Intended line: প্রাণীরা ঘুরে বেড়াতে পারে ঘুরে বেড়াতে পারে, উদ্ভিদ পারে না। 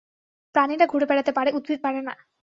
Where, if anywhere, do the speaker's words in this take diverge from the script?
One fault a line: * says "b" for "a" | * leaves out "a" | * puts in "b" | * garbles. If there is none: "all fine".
* leaves out "ঘুরে বেড়াতে পারে"